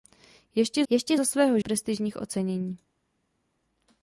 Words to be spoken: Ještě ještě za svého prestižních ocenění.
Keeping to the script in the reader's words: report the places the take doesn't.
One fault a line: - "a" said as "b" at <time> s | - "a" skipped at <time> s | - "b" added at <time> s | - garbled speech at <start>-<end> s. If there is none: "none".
none